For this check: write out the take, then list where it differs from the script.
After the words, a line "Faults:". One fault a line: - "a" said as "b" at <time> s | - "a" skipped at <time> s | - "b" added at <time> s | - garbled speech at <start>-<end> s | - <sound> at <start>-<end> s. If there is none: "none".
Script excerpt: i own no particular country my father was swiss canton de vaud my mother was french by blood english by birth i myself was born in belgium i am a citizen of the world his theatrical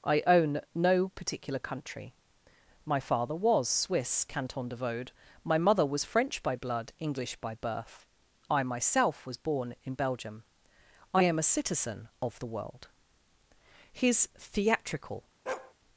i own no particular country my father was swiss canton de vaud my mother was french by blood english by birth i myself was born in belgium i am a citizen of the world his theatrical
Faults:
- bark at 15.5-15.7 s